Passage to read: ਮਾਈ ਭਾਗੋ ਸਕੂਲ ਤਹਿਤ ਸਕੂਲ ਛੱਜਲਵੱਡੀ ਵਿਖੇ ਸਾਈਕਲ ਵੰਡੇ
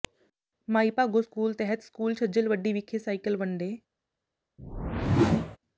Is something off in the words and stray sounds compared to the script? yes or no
yes